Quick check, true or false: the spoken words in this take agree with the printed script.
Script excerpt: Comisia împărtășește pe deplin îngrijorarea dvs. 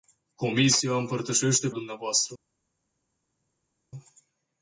false